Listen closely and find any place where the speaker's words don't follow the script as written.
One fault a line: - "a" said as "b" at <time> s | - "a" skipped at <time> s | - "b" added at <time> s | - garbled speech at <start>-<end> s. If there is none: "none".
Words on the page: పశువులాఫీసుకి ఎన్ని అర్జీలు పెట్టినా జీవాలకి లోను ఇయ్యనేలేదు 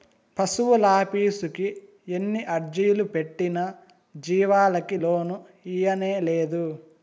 none